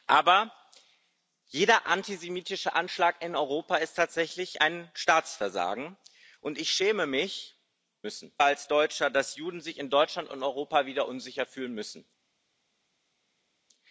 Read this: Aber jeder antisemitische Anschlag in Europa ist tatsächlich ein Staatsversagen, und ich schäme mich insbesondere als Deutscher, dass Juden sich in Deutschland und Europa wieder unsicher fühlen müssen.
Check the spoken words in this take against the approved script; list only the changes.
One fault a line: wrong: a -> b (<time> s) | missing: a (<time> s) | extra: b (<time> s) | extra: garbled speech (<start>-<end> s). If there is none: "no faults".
wrong: insbesondere -> müssen (8.0 s)